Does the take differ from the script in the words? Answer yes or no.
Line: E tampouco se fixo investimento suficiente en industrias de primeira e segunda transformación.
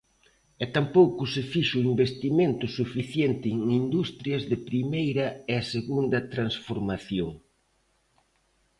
no